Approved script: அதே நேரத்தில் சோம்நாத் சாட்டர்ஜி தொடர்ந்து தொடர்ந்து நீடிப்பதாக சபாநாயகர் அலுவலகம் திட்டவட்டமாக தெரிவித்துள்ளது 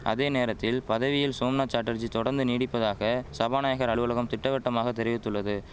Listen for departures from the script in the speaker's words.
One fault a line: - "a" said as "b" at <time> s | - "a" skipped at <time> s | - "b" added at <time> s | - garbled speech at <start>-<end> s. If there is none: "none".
- "பதவியில்" added at 0.8 s
- "தொடர்ந்து" skipped at 2.4 s